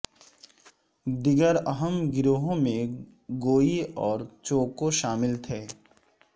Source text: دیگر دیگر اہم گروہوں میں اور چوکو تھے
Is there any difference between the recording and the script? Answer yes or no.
yes